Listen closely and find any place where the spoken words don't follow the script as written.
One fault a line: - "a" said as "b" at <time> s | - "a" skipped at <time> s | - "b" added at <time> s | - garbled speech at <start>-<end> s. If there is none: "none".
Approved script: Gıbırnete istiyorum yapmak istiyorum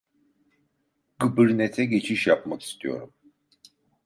- "istiyorum" said as "geçiş" at 1.9 s